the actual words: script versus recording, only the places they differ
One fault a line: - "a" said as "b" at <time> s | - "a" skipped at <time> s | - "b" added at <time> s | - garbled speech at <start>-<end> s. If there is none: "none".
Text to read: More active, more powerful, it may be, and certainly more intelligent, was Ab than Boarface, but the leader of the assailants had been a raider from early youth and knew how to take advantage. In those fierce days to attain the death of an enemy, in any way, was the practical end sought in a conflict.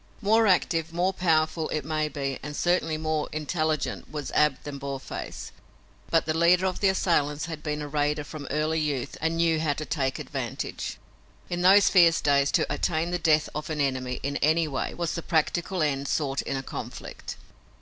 none